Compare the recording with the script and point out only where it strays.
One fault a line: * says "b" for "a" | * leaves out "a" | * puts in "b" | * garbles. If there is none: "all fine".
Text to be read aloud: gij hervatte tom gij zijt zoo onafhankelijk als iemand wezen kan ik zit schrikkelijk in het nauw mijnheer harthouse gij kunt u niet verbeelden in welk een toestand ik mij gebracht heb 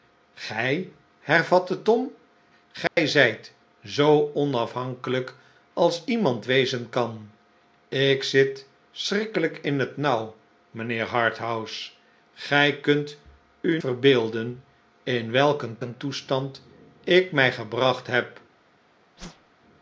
* leaves out "niet"
* puts in "een"